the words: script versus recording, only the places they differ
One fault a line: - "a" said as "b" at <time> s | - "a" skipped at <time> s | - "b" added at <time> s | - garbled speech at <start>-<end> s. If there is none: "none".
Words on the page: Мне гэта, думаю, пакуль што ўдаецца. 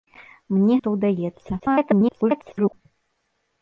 - "гэта думаю пакуль" skipped at 0.8 s
- garbled speech at 1.6-2.7 s